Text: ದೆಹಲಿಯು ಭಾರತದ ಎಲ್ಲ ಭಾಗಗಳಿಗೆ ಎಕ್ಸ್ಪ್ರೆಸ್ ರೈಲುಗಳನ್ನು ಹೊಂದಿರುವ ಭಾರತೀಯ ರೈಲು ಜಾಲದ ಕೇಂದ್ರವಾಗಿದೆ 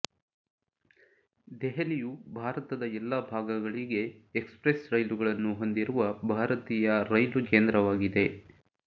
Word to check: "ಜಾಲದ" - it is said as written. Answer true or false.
false